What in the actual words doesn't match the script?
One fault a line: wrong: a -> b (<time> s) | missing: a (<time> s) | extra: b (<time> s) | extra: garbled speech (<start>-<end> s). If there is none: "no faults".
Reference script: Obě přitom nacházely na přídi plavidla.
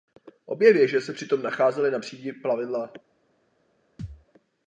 extra: věže se (0.7 s)